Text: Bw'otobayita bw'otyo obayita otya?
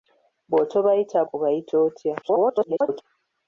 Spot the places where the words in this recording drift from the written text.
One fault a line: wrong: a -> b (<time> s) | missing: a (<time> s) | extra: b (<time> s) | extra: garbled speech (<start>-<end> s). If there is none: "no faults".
missing: bw'otyo (1.2 s)
extra: garbled speech (2.2-3.0 s)